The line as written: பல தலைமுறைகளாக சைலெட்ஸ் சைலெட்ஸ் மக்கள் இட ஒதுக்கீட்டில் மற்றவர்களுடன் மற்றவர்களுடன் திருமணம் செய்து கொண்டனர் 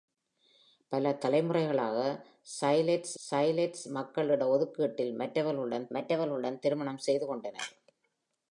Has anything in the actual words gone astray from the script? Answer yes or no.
no